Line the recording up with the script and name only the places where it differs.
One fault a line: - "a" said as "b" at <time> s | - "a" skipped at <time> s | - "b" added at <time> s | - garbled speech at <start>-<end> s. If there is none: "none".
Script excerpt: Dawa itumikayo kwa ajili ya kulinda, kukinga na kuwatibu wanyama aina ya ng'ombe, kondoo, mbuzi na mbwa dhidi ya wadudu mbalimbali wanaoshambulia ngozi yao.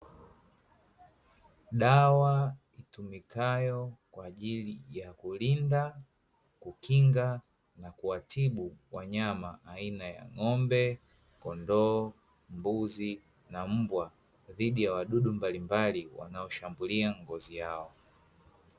none